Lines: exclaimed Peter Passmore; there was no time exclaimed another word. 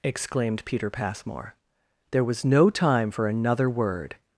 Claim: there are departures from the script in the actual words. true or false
true